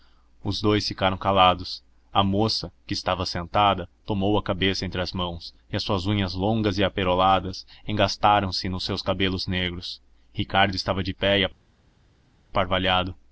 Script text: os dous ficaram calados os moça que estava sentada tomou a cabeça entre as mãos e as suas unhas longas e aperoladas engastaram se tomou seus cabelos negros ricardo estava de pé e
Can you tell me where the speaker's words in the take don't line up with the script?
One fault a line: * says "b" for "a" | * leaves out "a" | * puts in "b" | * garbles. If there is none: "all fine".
* says "a" for "os"
* says "nos" for "tomou"